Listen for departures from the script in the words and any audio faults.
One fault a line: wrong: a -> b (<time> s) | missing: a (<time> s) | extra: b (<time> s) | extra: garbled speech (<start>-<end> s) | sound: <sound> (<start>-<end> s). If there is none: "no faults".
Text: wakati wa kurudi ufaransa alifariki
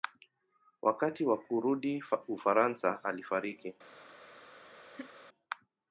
sound: laugh (4.9-5.1 s)